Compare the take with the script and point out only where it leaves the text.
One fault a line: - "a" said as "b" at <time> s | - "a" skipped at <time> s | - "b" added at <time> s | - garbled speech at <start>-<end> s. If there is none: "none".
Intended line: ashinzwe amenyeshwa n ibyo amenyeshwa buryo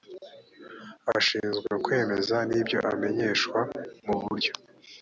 - "amenyeshwa" said as "kwemeza" at 1.8 s
- "mu" added at 4.0 s